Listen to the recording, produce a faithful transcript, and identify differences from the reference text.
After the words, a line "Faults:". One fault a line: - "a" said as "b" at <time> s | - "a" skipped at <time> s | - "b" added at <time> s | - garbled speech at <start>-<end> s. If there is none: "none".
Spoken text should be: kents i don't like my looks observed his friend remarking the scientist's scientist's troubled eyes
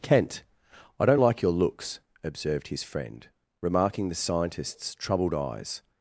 kent i don't like your looks observed his friend remarking the scientist's troubled eyes
Faults:
- "kents" said as "kent" at 0.0 s
- "my" said as "your" at 1.4 s
- "scientist's" skipped at 4.9 s